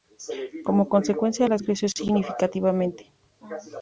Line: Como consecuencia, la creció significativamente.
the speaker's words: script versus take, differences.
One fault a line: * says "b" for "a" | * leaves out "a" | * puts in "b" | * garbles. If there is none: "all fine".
all fine